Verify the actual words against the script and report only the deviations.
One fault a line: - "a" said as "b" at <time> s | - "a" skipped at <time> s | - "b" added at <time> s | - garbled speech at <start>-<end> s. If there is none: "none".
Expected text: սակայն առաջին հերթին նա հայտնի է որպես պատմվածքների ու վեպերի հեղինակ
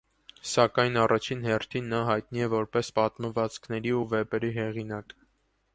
none